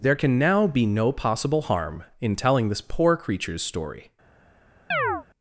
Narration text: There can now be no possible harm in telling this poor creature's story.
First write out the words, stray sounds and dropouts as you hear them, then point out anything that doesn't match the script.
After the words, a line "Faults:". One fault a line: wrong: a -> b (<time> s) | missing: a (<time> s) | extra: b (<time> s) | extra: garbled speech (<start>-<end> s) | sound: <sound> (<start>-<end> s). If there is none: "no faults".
There can now be no possible harm in telling this poor creature's story.
Faults:
sound: chirp (4.9-5.2 s)